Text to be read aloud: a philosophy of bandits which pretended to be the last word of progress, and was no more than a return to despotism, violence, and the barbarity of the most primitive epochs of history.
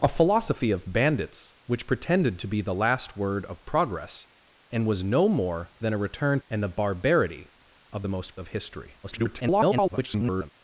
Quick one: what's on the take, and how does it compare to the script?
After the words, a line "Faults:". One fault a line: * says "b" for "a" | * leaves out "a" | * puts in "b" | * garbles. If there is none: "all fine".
a philosophy of bandits which pretended to be the last word of progress, and was no more than a return and the barbarity of the most of history. [garbled]
Faults:
* leaves out "to despotism violence"
* leaves out "primitive epochs"
* garbles